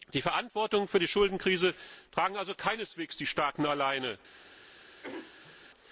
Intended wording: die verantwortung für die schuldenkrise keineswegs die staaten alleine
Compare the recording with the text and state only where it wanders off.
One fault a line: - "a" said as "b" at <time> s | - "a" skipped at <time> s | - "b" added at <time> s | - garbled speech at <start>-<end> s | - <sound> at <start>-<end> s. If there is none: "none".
- "tragen also" added at 2.1 s
- throat clearing at 5.0-5.6 s